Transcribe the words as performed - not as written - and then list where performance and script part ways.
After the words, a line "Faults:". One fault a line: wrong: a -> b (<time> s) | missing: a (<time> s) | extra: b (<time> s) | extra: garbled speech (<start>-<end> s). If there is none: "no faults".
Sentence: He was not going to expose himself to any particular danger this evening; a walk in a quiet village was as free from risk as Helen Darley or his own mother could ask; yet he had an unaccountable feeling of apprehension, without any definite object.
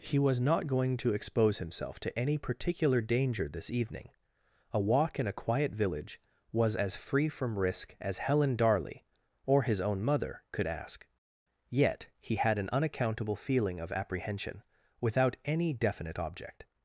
He was not going to expose himself to any particular danger this evening; a walk in a quiet village was as free from risk as Helen Darley or his own mother could ask; yet he had an unaccountable feeling of apprehension, without any definite object.
Faults:
no faults